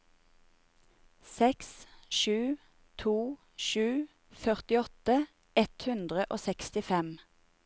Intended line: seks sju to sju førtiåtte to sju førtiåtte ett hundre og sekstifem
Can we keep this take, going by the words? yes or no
no